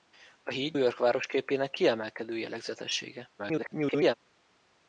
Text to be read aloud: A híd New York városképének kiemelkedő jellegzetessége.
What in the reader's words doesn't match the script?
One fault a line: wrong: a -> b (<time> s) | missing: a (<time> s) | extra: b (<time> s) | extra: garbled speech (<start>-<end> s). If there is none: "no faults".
missing: New (0.8 s)
extra: garbled speech (3.4-4.1 s)